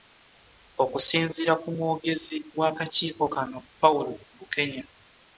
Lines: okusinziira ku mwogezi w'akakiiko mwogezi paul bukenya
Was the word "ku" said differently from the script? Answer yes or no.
no